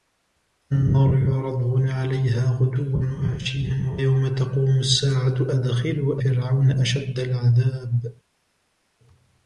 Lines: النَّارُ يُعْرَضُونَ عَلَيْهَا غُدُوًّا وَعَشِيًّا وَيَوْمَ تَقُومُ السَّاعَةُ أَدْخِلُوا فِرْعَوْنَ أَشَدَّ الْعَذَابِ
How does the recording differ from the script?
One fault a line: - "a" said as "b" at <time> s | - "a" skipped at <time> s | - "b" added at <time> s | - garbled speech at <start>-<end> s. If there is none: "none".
none